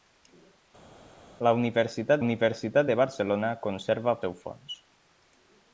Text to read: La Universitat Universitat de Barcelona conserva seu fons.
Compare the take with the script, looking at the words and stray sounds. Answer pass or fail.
pass